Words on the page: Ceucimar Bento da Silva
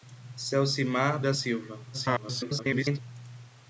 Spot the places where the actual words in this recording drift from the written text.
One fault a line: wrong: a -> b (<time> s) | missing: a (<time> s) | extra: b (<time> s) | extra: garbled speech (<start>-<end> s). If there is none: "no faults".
missing: Bento (1.2 s)
extra: garbled speech (1.9-3.0 s)